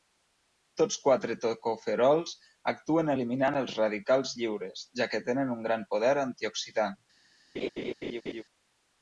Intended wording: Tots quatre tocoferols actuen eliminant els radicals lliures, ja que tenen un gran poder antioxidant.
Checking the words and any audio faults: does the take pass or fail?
fail